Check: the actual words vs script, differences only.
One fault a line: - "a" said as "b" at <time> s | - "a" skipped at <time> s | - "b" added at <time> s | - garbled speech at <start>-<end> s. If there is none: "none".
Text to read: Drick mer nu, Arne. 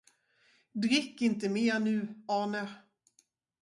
- "inte" added at 1.2 s